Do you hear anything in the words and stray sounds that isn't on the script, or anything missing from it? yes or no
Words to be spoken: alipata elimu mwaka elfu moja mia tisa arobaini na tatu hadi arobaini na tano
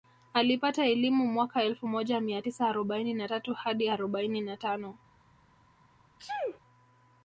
yes